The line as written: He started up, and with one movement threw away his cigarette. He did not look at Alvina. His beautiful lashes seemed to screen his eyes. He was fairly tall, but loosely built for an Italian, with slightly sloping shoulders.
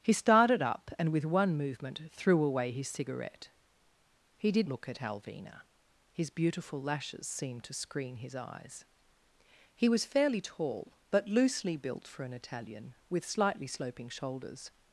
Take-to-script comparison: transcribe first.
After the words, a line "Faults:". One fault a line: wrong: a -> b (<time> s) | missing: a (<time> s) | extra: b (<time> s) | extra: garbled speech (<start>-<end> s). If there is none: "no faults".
He started up, and with one movement threw away his cigarette. He did look at Alvina. His beautiful lashes seemed to screen his eyes. He was fairly tall, but loosely built for an Italian, with slightly sloping shoulders.
Faults:
missing: not (4.7 s)